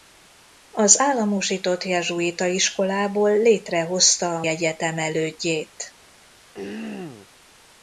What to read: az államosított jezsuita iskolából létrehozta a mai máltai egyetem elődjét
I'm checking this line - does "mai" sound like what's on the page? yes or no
no